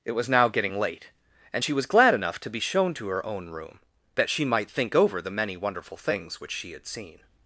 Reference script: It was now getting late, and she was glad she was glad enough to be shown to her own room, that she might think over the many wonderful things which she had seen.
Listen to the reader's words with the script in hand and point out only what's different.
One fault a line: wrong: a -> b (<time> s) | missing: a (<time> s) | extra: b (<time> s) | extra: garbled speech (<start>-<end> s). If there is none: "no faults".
missing: she was glad (2.1 s)